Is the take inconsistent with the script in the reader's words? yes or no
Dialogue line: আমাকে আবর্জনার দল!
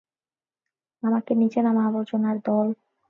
yes